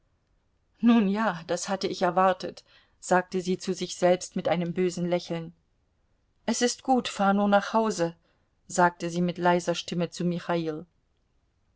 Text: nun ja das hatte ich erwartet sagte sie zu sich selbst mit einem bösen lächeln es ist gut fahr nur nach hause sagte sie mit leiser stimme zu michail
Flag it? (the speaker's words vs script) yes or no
no